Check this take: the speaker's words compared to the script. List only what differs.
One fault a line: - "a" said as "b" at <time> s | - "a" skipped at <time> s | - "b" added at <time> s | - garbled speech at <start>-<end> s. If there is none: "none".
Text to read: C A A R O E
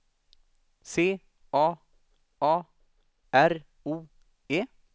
none